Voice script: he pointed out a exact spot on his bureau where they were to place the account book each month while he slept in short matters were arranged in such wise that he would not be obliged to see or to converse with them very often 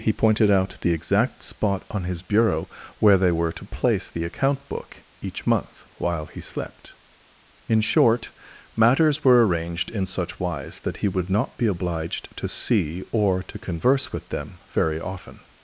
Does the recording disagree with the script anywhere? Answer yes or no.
yes